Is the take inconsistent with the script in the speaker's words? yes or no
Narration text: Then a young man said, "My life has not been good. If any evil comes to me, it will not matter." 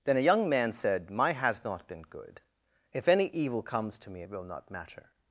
yes